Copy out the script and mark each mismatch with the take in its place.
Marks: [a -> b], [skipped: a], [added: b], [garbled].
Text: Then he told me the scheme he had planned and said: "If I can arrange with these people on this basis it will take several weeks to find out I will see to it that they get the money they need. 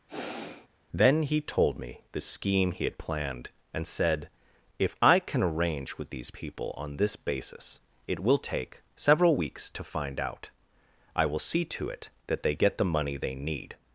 Then he told me the scheme he had planned and said: "If I can arrange with these people on this basis it will take several weeks to find out I will see to it that they get the money they need.